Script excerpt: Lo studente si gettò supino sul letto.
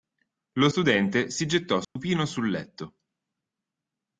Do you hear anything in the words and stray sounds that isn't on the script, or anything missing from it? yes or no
yes